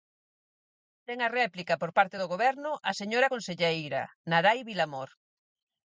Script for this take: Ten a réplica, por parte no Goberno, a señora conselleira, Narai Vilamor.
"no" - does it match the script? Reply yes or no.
no